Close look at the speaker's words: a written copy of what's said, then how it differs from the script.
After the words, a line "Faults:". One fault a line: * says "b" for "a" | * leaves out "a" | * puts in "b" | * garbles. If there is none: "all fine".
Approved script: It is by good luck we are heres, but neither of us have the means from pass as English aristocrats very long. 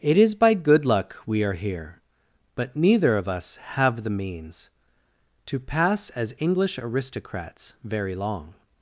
It is by good luck we are here, but neither of us have the means to pass as English aristocrats very long.
Faults:
* says "here" for "heres"
* says "to" for "from"